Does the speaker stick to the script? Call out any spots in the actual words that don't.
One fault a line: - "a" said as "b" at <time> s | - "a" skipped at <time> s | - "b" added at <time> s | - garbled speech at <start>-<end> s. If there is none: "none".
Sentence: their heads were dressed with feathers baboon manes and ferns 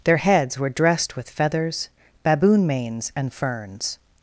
none